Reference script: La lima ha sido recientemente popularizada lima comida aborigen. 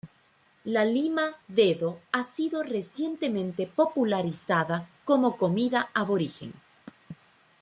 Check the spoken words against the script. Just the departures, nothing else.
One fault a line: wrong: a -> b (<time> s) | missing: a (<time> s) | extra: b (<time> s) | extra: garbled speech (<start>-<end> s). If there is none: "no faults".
extra: dedo (1.5 s)
wrong: lima -> como (5.0 s)